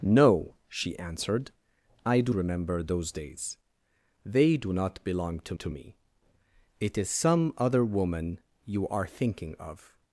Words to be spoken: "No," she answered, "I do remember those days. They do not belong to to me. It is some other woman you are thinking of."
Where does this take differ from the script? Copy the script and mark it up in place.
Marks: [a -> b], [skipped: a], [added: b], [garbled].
"No," she answered, "I do remember those days. They do not belong to to me. It is some other woman you are thinking of."